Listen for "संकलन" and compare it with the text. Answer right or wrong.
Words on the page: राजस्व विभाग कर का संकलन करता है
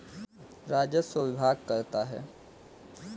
wrong